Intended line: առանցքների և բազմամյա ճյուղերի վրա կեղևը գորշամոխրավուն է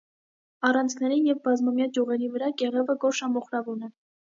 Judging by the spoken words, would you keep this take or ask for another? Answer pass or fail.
pass